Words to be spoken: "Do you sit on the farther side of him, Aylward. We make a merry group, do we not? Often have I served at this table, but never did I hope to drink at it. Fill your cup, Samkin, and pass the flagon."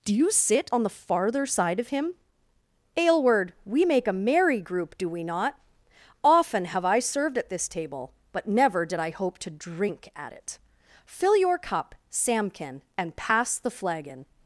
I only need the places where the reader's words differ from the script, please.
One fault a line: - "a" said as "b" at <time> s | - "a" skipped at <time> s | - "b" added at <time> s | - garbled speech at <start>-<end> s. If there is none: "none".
none